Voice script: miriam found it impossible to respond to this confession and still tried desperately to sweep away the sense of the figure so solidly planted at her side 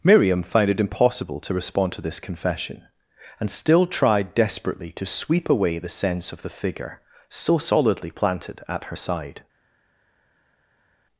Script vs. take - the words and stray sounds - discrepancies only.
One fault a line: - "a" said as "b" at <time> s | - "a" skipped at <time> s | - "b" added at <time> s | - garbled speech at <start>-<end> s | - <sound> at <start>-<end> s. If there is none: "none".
none